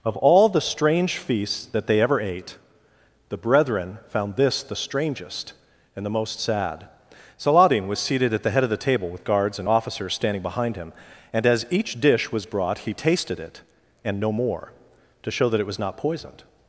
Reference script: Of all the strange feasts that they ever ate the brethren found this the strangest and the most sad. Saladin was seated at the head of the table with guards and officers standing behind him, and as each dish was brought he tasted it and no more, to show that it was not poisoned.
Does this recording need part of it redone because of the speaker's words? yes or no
no